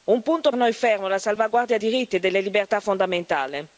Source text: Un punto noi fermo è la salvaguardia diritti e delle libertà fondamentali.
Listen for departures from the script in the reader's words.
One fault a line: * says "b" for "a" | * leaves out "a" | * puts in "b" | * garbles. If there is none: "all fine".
all fine